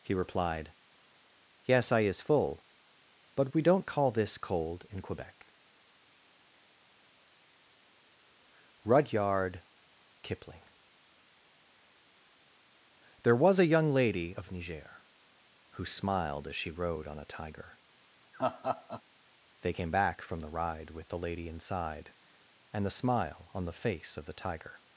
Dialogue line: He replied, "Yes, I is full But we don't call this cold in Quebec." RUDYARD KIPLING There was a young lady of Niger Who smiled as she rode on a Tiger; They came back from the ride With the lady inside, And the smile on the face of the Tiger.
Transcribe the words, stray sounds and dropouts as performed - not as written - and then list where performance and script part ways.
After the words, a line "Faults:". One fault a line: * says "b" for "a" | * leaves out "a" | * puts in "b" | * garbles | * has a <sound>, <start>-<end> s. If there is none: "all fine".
He replied, "Yes, I is full But we don't call this cold in Quebec." RUDYARD KIPLING There was a young lady of Niger Who smiled as she rode on a Tiger; They came back from the ride With the lady inside, And the smile on the face of the Tiger.
Faults:
* has a laugh, 18.3-19.0 s